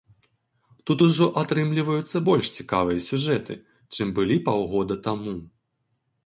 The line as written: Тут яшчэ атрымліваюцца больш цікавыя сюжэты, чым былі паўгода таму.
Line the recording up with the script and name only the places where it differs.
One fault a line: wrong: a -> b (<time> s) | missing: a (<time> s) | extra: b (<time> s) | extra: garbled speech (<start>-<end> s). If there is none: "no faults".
wrong: яшчэ -> ужо (1.1 s)